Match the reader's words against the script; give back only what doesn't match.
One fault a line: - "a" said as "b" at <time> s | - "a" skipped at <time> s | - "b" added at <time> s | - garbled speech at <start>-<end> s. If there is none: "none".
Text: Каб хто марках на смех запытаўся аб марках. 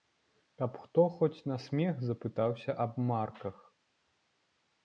- "марках" said as "хоць" at 1.2 s